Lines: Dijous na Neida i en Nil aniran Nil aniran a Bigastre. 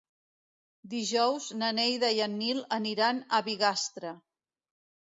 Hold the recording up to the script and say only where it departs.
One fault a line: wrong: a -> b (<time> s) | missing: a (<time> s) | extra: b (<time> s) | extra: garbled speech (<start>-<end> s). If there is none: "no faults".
missing: Nil aniran (3.2 s)